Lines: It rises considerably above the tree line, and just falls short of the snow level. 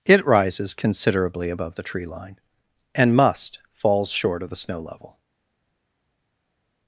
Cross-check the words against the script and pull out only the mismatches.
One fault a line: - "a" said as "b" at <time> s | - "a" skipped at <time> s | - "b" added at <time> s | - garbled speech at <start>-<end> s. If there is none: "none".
- "just" said as "must" at 3.1 s